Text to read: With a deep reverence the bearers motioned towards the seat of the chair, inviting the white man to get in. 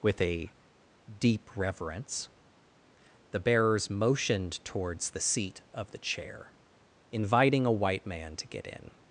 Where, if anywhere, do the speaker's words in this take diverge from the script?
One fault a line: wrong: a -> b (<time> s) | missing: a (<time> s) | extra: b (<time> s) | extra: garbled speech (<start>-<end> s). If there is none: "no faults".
wrong: the -> a (7.7 s)